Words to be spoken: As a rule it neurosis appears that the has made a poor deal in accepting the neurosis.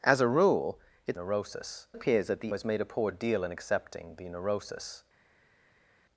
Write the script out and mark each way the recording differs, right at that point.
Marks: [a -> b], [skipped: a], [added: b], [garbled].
As a rule it neurosis appears that the has made a poor deal in accepting the neurosis.